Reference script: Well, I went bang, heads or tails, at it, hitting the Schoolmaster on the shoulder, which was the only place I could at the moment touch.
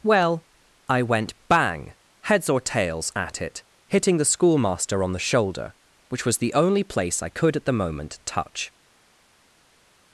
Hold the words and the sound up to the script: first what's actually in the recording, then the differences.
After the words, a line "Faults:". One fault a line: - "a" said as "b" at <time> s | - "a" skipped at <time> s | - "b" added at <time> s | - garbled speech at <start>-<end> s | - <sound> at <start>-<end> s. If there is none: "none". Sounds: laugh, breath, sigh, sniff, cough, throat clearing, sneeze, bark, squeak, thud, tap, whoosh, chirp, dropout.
Well, I went bang, heads or tails, at it, hitting the Schoolmaster on the shoulder, which was the only place I could at the moment touch.
Faults:
none